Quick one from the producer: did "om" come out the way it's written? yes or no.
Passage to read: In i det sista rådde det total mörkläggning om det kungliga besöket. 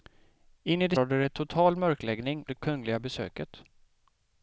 no